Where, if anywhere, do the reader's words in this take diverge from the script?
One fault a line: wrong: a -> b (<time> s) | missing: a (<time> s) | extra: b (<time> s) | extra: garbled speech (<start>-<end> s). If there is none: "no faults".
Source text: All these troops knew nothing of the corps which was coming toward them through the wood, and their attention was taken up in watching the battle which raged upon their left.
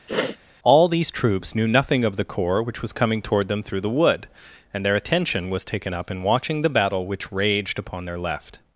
no faults